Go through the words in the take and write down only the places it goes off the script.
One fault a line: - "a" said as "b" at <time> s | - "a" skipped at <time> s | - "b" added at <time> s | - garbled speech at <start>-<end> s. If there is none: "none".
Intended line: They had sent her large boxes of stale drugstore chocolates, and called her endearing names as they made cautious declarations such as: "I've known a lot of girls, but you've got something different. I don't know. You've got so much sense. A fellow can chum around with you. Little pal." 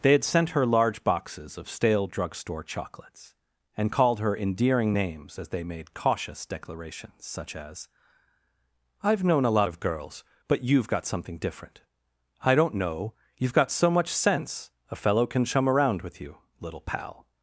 none